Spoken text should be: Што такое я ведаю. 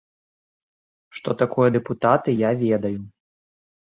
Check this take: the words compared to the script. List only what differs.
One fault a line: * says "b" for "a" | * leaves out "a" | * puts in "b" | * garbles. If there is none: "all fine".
* puts in "дэпутаты"